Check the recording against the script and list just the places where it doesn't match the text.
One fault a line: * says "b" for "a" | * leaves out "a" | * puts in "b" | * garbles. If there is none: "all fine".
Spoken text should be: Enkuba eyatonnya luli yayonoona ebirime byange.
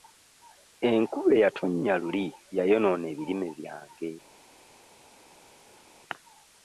all fine